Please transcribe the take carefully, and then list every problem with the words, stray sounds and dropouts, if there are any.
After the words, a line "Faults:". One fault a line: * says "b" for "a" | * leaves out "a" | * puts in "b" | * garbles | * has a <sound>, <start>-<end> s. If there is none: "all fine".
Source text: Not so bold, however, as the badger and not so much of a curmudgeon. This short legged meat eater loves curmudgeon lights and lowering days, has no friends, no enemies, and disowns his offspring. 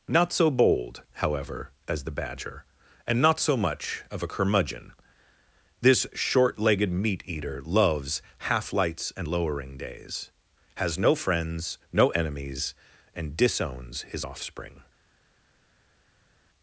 Not so bold, however, as the badger and not so much of a curmudgeon. This short legged meat eater loves half lights and lowering days, has no friends, no enemies, and disowns his offspring.
Faults:
* says "half" for "curmudgeon"